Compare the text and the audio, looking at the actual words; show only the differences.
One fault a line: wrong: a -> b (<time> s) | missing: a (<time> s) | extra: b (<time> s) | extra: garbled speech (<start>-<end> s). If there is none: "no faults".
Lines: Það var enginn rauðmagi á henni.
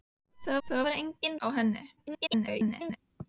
extra: það (0.7 s)
missing: rauðmagi (1.4 s)
extra: garbled speech (2.0-3.0 s)